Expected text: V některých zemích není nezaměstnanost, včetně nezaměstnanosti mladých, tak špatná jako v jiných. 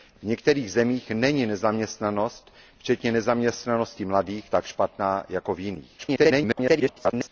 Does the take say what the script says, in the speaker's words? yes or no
no